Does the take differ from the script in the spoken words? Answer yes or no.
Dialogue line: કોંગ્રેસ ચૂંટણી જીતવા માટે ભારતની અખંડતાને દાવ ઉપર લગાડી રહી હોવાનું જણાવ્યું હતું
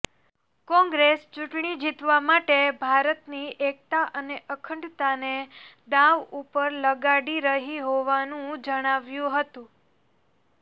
yes